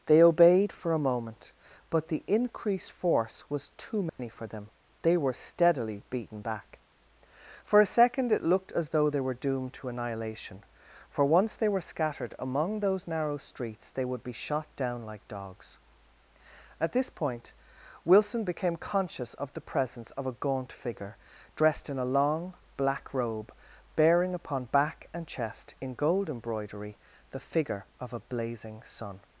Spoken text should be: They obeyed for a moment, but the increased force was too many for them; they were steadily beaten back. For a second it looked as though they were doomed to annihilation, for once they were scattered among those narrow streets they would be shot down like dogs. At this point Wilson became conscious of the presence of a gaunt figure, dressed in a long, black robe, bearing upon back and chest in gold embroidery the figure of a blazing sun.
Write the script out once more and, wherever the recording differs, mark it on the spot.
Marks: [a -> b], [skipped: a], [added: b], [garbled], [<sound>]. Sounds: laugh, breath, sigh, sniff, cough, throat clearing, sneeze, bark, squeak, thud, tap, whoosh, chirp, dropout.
They obeyed for a moment, but the increased force was too many [dropout] for them; they were steadily beaten back. For a second it looked as though they were doomed to annihilation, for once they were scattered among those narrow streets they would be shot down like dogs. At this point Wilson became conscious of the presence of a gaunt figure, dressed in a long, black robe, bearing upon back and chest in gold embroidery the figure of a blazing sun.